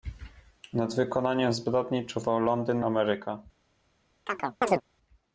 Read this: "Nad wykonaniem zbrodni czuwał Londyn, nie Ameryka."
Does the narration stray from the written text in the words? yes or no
yes